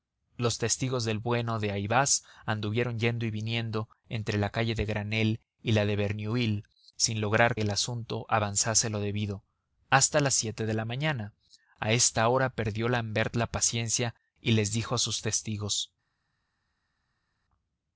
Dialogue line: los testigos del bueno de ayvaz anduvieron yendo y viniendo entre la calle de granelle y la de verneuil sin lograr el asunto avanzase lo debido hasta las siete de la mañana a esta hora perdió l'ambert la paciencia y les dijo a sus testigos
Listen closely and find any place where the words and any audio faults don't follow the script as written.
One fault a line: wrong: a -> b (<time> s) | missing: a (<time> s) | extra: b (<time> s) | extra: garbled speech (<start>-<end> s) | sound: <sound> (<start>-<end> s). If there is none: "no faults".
no faults